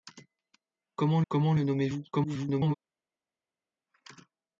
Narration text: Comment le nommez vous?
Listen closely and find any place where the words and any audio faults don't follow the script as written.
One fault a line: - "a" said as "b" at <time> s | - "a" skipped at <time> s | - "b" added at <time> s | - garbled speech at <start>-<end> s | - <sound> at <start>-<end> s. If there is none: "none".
- "comment" added at 1.3 s
- garbled speech at 2.1-2.7 s